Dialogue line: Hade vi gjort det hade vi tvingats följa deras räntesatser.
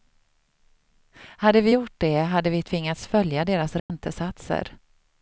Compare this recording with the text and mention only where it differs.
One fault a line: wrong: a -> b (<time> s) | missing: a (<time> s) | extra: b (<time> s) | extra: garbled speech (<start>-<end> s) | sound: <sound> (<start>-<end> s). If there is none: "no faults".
sound: dropout (3.8-3.9 s)